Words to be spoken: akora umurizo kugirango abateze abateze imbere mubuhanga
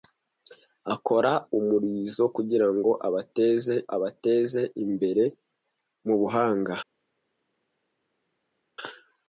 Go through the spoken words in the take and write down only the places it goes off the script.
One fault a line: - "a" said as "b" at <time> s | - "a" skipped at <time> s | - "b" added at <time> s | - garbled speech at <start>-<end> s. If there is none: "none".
none